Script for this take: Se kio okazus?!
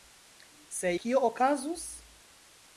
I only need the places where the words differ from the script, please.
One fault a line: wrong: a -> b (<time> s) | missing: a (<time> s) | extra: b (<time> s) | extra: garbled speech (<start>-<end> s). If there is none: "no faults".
no faults